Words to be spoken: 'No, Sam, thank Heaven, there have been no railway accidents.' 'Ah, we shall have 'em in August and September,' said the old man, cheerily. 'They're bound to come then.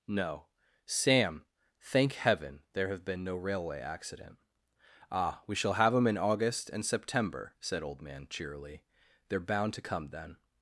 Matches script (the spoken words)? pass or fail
fail